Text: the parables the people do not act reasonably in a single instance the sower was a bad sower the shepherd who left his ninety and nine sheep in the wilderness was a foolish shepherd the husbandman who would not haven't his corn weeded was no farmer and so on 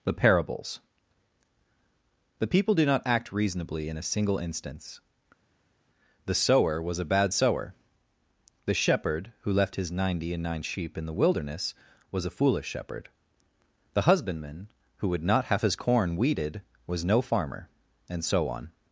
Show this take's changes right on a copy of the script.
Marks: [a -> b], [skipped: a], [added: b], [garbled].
the parables the people do not act reasonably in a single instance the sower was a bad sower the shepherd who left his ninety and nine sheep in the wilderness was a foolish shepherd the husbandman who would not [haven't -> have] his corn weeded was no farmer and so on